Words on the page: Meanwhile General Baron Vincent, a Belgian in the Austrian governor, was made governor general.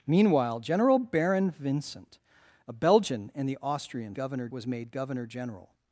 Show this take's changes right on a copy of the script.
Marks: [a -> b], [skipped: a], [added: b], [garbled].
Meanwhile General Baron Vincent, a Belgian in the Austrian governor, was made governor general.